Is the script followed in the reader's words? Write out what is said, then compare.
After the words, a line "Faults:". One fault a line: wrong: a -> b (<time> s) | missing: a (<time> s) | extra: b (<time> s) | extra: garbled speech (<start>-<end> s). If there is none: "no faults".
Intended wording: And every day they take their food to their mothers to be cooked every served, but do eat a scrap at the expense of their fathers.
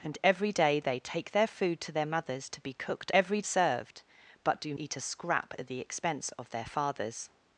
And every day they take their food to their mothers to be cooked every served, but do eat a scrap at the expense of their fathers.
Faults:
no faults